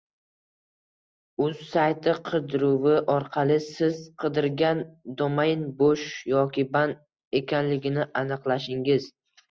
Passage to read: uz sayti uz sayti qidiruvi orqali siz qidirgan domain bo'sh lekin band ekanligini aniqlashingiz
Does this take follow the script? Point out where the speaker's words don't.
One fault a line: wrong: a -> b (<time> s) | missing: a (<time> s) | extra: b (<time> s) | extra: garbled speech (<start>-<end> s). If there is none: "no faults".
missing: uz sayti (2.1 s)
wrong: lekin -> yoki (6.4 s)